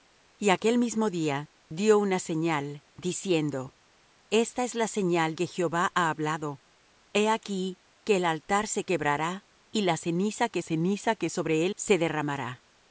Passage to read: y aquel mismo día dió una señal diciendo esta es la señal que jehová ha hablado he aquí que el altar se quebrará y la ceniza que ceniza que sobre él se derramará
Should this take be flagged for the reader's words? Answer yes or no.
no